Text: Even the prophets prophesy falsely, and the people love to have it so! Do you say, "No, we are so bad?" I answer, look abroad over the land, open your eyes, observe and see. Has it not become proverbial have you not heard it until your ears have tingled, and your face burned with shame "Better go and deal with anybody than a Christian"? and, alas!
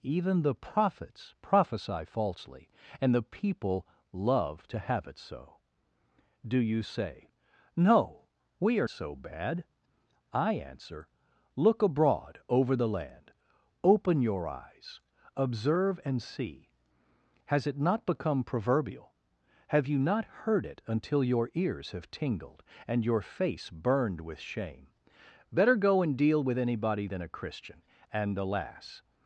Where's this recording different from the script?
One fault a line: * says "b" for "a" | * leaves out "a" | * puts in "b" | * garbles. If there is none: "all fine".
all fine